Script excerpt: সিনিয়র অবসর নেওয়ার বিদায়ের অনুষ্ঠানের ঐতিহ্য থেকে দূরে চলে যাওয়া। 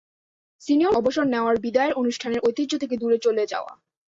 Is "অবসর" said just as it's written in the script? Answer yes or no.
yes